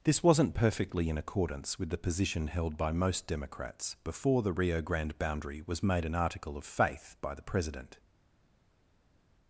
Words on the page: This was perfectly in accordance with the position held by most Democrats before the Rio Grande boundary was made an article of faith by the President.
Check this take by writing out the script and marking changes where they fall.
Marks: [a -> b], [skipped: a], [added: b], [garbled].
This [was -> wasn't] perfectly in accordance with the position held by most Democrats before the Rio Grande boundary was made an article of faith by the President.